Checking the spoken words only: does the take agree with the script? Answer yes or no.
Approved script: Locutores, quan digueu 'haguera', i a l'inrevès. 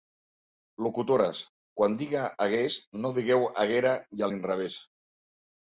no